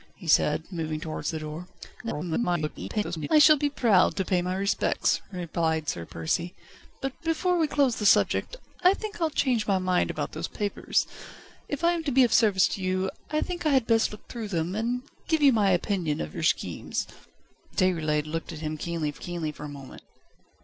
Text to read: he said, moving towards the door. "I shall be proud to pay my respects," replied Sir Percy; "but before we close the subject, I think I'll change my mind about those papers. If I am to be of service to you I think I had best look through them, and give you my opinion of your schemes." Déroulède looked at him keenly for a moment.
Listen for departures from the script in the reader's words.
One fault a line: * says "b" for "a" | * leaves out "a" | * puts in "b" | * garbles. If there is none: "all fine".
* garbles
* puts in "keenly for"